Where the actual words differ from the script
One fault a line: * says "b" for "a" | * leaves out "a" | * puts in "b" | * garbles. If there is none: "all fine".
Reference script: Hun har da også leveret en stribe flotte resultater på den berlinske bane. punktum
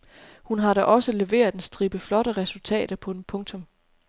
* leaves out "berlinske bane"